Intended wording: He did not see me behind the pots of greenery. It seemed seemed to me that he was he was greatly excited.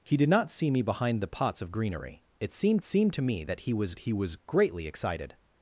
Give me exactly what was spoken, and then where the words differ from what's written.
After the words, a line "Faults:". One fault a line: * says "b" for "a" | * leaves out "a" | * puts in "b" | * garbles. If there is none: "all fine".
He did not see me behind the pots of greenery. It seemed seemed to me that he was he was greatly excited.
Faults:
all fine